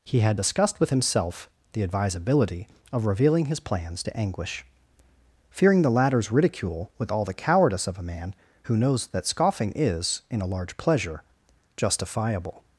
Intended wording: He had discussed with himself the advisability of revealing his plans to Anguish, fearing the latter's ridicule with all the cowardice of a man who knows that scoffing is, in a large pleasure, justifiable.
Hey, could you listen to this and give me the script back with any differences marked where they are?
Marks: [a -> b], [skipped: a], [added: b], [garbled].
He had discussed with himself the advisability of revealing his plans to Anguish, fearing the latter's ridicule with all the cowardice of a man who knows that scoffing is, in a large pleasure, justifiable.